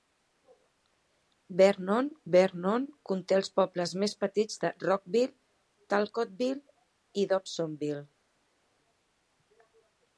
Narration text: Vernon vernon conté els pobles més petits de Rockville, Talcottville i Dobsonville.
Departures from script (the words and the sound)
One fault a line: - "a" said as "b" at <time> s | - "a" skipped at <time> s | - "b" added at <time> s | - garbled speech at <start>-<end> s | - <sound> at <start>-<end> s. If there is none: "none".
none